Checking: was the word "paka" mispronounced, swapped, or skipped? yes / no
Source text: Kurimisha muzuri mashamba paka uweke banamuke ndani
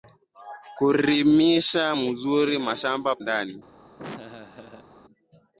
yes